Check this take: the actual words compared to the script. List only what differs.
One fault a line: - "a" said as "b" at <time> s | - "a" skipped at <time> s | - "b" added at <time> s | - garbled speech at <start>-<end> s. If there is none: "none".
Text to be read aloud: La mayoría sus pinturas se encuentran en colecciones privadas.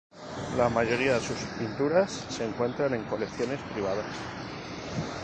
none